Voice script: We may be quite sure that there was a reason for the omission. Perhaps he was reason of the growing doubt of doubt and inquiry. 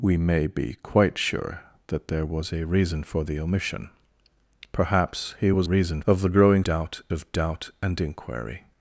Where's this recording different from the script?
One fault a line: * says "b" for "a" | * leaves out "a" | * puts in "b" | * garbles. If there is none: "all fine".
all fine